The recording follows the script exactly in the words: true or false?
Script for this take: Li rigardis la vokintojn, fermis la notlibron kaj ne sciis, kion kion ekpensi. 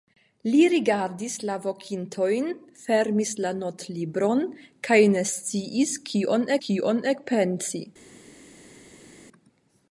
true